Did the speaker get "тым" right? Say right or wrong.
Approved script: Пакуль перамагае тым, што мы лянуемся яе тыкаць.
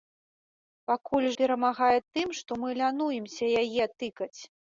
right